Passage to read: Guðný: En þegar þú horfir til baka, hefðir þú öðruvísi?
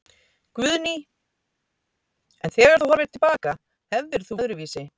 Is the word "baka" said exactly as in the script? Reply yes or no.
yes